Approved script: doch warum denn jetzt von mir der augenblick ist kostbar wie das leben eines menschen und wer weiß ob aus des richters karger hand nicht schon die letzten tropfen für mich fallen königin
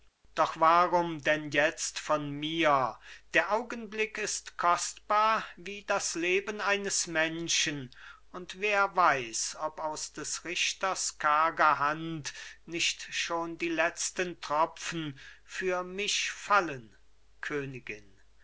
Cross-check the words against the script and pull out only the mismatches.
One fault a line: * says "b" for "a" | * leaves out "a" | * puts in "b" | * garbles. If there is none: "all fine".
all fine